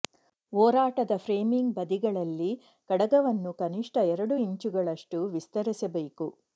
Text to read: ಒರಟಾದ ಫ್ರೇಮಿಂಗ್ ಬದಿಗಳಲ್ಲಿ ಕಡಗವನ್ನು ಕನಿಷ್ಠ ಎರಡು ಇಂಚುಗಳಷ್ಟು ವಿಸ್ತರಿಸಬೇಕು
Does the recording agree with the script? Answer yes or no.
yes